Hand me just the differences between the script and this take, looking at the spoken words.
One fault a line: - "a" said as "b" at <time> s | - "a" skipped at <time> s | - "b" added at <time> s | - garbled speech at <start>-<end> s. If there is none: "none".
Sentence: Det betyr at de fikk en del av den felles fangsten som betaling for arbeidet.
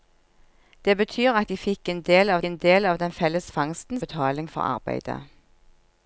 - "en del av" added at 2.4 s
- "som" skipped at 4.0 s